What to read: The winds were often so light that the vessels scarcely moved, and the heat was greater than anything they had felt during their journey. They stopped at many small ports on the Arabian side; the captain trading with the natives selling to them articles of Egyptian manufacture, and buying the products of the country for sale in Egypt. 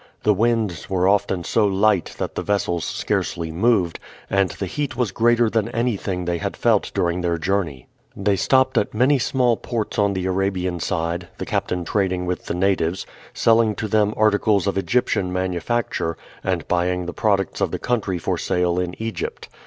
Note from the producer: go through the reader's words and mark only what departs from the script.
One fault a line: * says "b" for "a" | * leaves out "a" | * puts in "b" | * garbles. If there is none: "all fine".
all fine